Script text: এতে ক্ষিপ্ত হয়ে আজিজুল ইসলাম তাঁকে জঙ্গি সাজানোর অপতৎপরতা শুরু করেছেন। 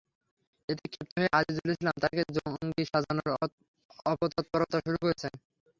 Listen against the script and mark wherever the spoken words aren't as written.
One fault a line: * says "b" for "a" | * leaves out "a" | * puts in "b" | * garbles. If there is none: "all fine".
all fine